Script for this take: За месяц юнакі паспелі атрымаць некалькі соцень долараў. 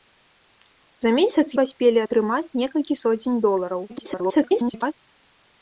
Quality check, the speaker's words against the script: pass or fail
fail